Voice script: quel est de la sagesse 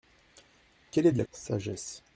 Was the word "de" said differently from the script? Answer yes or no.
no